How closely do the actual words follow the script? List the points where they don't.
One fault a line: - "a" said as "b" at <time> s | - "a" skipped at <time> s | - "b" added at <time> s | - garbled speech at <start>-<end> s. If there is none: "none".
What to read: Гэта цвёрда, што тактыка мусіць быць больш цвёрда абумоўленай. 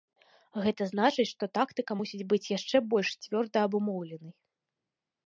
- "цвёрда" said as "значыць" at 0.9 s
- "яшчэ" added at 2.6 s